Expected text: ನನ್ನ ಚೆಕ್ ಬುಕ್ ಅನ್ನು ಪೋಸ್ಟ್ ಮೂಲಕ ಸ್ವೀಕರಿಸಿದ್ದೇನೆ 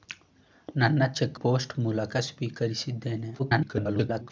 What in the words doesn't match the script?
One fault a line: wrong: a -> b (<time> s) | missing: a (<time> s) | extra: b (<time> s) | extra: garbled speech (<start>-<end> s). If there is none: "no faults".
missing: ಬುಕ್ ಅನ್ನು (1.4 s)
extra: garbled speech (3.4-4.3 s)